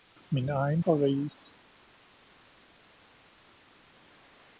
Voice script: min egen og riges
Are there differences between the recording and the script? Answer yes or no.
no